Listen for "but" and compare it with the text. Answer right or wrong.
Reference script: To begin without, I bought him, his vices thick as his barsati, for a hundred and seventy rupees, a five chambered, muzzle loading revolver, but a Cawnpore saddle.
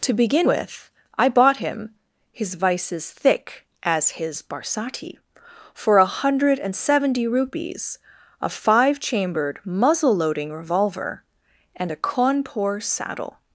wrong